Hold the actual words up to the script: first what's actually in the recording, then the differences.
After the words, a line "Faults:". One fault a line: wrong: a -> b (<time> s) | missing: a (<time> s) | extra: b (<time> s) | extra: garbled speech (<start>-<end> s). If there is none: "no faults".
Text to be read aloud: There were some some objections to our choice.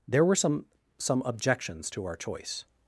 There were some some objections to our choice.
Faults:
no faults